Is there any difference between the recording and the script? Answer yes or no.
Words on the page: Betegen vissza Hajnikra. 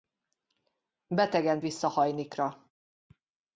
no